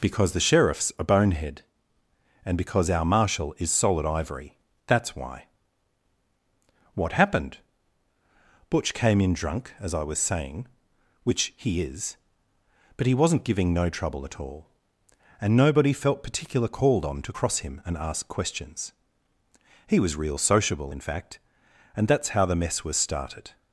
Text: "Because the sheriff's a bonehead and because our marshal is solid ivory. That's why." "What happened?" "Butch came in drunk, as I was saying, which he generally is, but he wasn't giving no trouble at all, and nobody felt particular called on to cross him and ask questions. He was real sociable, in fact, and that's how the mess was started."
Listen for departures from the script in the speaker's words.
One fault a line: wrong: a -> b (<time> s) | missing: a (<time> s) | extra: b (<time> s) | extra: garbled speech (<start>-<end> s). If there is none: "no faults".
missing: generally (11.8 s)